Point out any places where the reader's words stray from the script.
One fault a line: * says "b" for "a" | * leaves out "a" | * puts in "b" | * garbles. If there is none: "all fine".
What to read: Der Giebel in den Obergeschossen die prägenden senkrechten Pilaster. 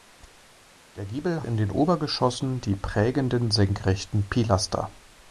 all fine